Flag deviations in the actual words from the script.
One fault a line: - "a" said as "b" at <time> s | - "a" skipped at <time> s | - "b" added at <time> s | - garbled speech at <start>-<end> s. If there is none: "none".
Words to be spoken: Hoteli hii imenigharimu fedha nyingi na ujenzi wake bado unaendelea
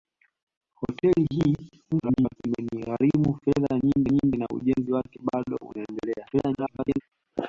- garbled speech at 1.9-2.4 s
- "nyingi" added at 4.1 s
- garbled speech at 6.3-7.0 s